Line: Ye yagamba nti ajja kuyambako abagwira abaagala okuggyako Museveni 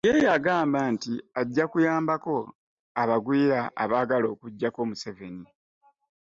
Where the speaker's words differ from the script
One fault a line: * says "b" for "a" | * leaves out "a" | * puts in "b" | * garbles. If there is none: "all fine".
all fine